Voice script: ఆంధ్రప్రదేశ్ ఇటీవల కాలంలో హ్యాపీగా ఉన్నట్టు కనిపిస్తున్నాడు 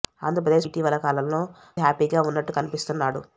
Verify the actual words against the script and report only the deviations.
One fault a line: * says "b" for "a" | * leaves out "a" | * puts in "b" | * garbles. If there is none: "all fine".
all fine